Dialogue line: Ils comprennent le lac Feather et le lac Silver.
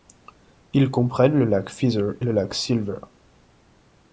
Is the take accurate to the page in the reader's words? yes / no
no